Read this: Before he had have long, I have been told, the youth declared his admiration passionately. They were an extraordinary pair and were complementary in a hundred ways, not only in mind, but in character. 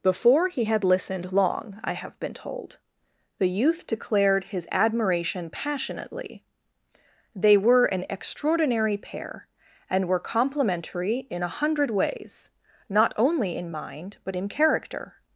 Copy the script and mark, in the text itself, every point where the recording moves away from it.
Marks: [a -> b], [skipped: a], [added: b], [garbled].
Before he had [have -> listened] long, I have been told, the youth declared his admiration passionately. They were an extraordinary pair and were complementary in a hundred ways, not only in mind, but in character.